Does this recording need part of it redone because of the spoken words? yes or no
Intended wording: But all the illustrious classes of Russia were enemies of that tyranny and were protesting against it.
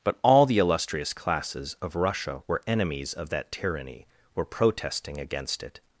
yes